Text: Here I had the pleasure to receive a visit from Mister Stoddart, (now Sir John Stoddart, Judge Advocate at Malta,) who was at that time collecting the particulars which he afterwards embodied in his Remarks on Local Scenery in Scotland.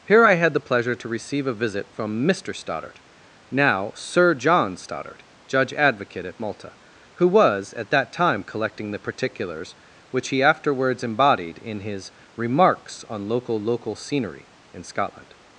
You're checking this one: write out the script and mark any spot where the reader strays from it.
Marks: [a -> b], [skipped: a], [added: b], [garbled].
Here I had the pleasure to receive a visit from Mister Stoddart, (now Sir John Stoddart, Judge Advocate at Malta,) who was at that time collecting the particulars which he afterwards embodied in his Remarks on Local [added: Local] Scenery in Scotland.